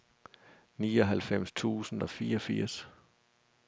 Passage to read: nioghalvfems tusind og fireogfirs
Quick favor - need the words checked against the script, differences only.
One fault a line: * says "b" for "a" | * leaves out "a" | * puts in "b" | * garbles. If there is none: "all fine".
all fine